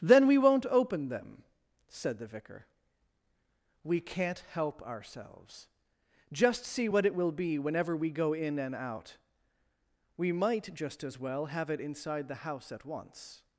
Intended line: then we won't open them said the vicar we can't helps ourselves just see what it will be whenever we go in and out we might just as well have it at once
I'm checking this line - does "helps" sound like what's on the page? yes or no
no